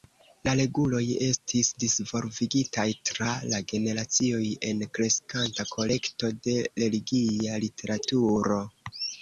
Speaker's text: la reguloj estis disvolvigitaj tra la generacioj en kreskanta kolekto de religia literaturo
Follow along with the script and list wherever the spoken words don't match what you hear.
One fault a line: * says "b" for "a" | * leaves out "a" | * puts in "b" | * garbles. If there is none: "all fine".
all fine